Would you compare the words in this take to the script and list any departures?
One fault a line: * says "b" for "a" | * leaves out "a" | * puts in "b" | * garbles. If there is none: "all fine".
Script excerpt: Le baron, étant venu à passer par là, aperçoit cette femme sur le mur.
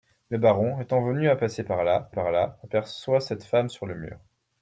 * puts in "par là"